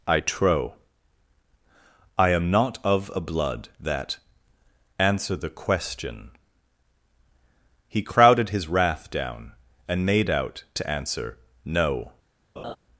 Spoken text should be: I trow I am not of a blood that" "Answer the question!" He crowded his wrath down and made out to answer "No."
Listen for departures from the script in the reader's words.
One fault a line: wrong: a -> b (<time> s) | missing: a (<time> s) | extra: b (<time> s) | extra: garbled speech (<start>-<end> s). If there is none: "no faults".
no faults